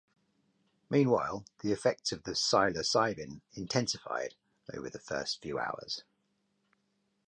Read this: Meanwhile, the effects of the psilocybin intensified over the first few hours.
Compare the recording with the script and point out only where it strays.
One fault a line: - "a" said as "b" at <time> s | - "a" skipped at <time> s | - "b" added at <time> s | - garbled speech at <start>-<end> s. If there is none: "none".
none